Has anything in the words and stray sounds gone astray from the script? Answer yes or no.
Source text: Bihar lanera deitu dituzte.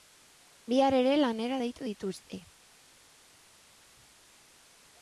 yes